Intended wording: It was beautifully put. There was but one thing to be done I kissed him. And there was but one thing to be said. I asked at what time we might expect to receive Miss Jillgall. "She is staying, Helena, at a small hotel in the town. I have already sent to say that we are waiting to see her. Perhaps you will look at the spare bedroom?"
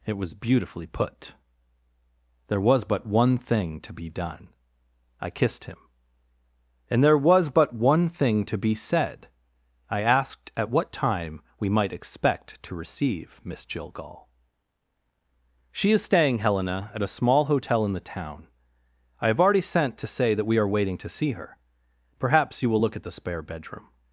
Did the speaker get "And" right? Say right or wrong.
right